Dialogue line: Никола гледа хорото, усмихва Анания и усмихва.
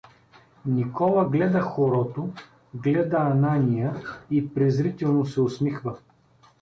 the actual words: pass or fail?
fail